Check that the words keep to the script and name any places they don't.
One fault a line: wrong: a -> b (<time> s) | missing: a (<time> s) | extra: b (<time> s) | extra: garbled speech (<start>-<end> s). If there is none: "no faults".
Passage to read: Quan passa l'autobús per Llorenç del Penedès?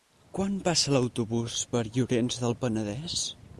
no faults